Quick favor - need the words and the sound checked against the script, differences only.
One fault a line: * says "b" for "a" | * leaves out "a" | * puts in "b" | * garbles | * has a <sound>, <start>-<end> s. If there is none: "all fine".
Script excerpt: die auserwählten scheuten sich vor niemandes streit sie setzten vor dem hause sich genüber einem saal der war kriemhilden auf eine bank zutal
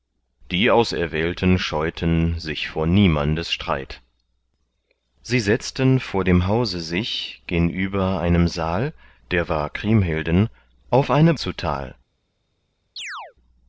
* leaves out "bank"
* has a chirp, 13.0-13.3 s